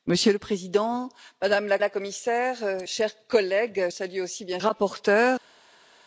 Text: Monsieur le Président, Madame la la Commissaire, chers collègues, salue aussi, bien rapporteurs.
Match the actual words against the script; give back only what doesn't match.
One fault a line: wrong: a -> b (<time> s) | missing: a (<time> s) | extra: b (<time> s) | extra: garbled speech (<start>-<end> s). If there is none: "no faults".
no faults